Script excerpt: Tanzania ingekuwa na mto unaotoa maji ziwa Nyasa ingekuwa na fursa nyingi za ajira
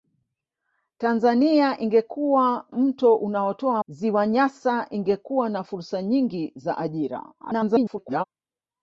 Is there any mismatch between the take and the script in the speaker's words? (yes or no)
yes